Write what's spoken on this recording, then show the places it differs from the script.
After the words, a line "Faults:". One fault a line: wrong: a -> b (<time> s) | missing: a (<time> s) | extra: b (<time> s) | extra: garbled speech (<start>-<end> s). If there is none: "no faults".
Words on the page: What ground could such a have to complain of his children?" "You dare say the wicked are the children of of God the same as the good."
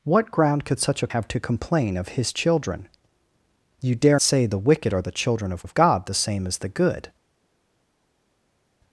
What ground could such a have to complain of his children?" "You dare say the wicked are the children of of God the same as the good."
Faults:
no faults